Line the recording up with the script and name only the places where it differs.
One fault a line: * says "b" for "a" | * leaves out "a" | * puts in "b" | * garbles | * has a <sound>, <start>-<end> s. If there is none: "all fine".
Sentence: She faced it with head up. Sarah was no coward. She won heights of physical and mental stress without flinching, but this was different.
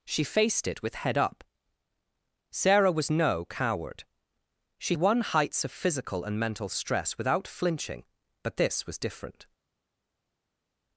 all fine